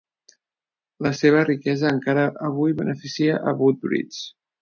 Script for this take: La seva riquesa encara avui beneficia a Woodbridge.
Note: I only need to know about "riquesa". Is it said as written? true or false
true